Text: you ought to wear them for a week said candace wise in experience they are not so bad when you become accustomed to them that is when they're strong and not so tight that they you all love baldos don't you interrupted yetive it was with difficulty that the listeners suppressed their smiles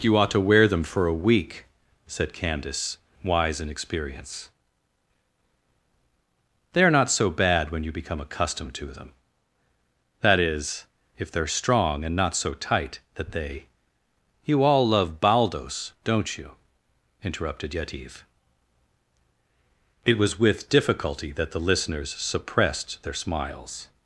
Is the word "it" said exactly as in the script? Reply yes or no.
yes